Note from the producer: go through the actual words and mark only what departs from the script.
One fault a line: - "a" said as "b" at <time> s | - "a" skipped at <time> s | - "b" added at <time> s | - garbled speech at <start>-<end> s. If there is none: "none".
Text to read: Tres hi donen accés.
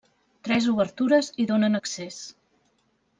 - "obertures" added at 0.7 s